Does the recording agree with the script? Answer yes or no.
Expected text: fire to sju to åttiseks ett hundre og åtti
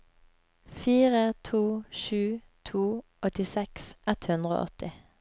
yes